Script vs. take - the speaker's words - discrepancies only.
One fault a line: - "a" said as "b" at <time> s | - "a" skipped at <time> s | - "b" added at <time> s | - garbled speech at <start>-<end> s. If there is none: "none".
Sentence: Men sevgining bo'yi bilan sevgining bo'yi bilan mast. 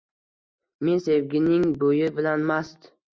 - "sevgining bo'yi bilan" skipped at 2.5 s